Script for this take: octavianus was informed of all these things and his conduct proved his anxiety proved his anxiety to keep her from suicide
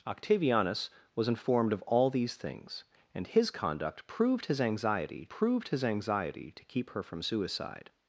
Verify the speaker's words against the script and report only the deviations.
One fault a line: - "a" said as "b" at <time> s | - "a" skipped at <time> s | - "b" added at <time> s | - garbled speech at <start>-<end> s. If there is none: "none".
none